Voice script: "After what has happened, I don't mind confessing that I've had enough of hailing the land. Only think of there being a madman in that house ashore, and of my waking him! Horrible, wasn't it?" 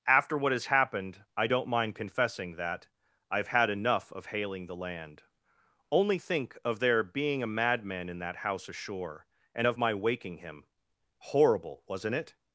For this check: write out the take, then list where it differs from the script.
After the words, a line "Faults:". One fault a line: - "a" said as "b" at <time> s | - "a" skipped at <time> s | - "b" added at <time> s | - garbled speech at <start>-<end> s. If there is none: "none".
"After what has happened, I don't mind confessing that I've had enough of hailing the land. Only think of there being a madman in that house ashore, and of my waking him! Horrible, wasn't it?"
Faults:
none